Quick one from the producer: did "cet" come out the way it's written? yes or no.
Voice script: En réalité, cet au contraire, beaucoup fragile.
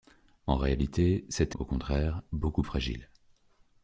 yes